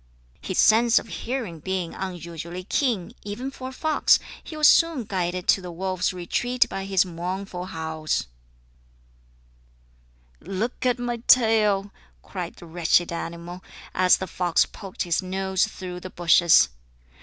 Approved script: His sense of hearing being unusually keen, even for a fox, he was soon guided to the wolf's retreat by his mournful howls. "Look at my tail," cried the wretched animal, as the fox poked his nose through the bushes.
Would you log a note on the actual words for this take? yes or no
no